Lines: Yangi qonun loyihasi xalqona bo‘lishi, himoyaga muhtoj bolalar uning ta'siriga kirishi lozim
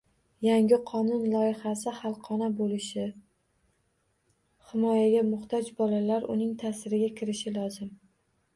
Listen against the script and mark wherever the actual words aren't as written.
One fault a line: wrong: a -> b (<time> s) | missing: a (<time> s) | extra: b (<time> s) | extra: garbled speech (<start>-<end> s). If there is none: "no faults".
no faults